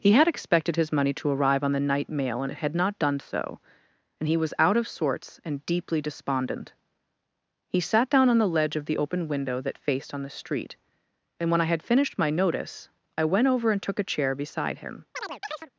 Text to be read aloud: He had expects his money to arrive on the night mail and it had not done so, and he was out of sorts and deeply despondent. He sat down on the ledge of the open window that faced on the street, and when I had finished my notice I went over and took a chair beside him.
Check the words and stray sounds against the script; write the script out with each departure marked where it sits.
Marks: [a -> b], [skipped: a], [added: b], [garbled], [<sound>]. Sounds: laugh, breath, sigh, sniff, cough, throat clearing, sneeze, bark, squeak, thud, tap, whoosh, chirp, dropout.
He had [expects -> expected] his money to arrive on the night mail and it had not done so, and he was out of sorts and deeply despondent. He sat down on the ledge of the open window that faced on the street, and when I had finished my notice I went over and took a chair beside him. [chirp]